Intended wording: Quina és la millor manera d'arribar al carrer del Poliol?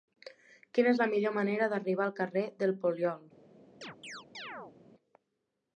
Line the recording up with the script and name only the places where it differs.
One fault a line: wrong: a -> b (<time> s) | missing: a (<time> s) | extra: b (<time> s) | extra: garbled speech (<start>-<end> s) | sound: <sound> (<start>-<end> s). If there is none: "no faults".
sound: chirp (3.8-4.8 s)